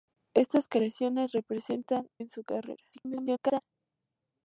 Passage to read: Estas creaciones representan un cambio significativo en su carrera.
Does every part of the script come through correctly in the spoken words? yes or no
no